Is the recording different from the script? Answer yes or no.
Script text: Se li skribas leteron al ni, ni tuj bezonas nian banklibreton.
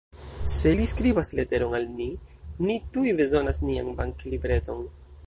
no